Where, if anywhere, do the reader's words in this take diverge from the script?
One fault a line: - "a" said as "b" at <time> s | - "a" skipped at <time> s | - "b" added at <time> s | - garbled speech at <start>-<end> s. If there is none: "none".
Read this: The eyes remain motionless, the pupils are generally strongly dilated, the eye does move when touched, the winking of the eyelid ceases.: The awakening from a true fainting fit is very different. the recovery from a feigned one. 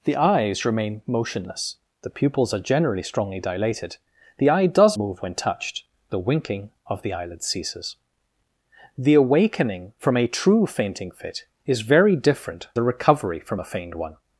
none